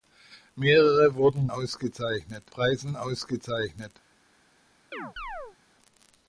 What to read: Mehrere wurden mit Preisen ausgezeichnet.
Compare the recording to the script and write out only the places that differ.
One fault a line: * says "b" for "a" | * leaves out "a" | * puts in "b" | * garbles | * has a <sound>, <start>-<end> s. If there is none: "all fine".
* says "ausgezeichnet" for "mit"
* has a chirp, 4.9-5.6 s